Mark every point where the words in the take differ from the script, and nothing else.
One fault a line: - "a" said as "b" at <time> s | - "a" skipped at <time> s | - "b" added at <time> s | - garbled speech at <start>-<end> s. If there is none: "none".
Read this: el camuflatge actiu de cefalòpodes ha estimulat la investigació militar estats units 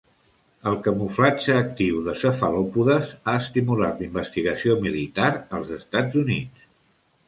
- "als" added at 5.6 s